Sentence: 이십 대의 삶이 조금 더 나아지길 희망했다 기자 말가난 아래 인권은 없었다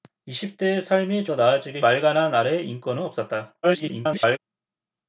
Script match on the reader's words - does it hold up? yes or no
no